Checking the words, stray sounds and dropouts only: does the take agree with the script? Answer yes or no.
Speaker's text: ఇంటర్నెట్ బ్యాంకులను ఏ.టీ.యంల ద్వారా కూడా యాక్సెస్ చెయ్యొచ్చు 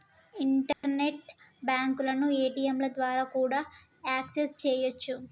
no